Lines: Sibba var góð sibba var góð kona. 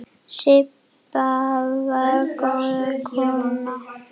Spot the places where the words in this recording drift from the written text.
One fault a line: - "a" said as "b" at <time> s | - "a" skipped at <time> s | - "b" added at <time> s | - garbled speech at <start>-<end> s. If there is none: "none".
- "sibba var góð" skipped at 2.7 s